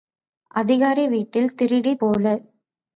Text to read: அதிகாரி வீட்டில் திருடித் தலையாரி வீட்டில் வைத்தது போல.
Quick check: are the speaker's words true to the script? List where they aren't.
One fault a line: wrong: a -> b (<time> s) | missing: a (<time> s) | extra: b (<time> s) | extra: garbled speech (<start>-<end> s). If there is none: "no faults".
missing: தலையாரி வீட்டில் வைத்தது (2.0 s)